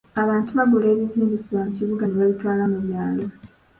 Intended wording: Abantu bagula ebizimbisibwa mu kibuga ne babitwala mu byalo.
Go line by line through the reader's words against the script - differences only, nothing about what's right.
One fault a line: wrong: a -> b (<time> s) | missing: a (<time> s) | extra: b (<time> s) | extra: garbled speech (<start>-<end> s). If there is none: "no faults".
no faults